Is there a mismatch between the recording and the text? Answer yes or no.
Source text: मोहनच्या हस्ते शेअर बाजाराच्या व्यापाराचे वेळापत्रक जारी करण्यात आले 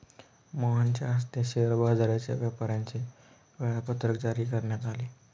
no